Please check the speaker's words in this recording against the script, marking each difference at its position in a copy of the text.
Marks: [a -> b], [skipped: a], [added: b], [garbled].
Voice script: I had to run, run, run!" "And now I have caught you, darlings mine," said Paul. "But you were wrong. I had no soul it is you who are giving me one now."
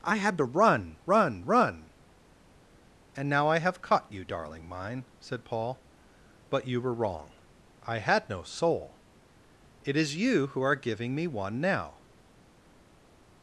I had to run, run, run!" "And now I have caught you, [darlings -> darling] mine," said Paul. "But you were wrong. I had no soul it is you who are giving me one now."